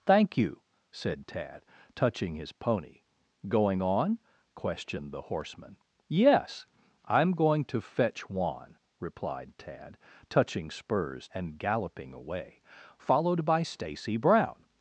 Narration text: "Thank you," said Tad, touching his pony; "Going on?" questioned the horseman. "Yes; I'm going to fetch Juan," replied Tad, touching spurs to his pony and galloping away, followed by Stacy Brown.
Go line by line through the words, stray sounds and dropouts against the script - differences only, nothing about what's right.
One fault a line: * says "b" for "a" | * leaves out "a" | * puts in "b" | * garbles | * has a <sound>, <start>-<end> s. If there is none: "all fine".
* leaves out "to his pony"